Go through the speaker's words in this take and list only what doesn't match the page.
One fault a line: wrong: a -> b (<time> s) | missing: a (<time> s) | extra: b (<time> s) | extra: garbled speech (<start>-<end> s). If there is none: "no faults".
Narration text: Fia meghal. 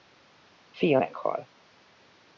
no faults